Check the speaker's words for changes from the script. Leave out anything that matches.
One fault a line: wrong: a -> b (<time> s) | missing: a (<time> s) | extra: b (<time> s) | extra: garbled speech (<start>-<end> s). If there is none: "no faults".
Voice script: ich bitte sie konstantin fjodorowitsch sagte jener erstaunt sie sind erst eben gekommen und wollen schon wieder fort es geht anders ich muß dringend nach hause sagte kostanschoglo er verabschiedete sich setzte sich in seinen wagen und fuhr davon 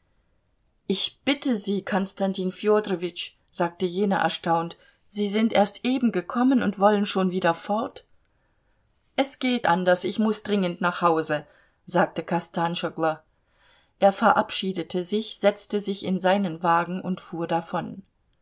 no faults